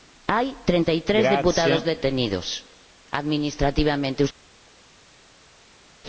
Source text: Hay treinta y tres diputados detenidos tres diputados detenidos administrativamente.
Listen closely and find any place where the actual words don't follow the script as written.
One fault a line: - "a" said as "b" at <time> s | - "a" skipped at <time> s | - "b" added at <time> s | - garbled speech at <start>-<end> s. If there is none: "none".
- "tres diputados detenidos" skipped at 2.6 s